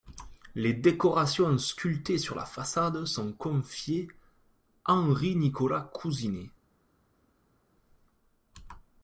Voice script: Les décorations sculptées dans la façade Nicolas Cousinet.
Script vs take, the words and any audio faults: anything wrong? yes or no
yes